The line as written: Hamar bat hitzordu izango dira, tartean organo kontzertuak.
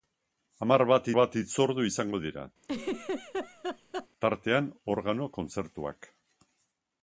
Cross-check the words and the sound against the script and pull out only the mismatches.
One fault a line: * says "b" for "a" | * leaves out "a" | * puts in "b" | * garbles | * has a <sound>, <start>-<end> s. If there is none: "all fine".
* puts in "bat"
* has a laugh, 2.6-4.1 s